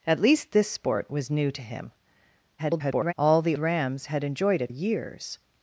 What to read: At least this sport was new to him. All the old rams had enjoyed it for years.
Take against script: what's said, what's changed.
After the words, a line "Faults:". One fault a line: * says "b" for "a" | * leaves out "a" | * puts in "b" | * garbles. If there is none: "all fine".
At least this sport was new to him. [garbled] All the rams had enjoyed it years.
Faults:
* garbles
* leaves out "old"
* leaves out "for"